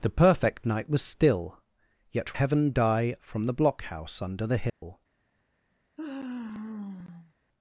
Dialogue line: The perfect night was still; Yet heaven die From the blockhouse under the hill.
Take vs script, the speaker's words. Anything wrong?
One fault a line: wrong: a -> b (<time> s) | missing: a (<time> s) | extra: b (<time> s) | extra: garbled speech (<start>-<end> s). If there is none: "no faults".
no faults